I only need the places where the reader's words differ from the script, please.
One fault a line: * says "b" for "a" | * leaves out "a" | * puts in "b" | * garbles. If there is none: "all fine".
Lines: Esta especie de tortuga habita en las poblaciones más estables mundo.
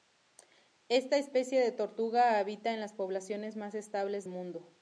all fine